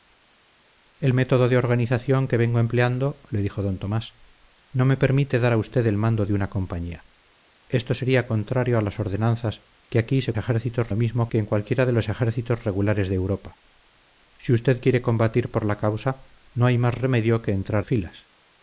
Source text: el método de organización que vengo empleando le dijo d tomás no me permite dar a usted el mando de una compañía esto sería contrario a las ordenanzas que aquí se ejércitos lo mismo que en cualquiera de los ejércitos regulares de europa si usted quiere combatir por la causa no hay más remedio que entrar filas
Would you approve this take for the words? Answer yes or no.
yes